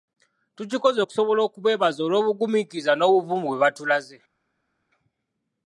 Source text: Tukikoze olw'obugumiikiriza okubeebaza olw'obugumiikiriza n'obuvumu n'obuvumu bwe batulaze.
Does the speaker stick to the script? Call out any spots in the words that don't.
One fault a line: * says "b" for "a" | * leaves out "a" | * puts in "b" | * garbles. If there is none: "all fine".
* says "okusobola" for "olw'obugumiikiriza"
* leaves out "n'obuvumu"